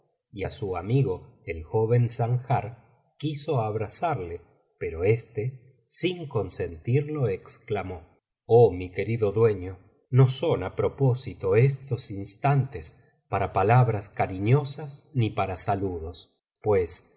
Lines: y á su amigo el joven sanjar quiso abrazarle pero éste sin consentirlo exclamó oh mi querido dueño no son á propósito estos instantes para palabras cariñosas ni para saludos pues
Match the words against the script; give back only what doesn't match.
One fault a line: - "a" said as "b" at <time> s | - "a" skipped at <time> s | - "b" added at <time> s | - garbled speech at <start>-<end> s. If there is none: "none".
none